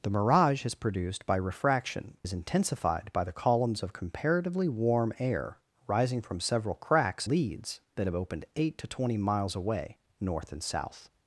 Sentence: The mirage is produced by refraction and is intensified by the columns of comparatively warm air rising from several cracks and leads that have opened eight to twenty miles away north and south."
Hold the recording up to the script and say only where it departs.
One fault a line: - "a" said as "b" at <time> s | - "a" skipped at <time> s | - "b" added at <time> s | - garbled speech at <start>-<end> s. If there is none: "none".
- "and" skipped at 2.2 s
- "and" skipped at 7.3 s